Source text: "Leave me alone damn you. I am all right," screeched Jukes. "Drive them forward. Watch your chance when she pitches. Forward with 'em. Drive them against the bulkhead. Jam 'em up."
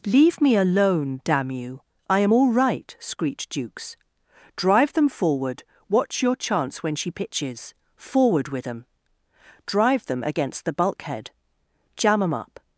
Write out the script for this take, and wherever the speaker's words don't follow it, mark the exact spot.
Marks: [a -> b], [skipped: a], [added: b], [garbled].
"Leave me alone damn you. I am all right," screeched Jukes. "Drive them forward. Watch your chance when she pitches. Forward with 'em. Drive them against the bulkhead. Jam 'em up."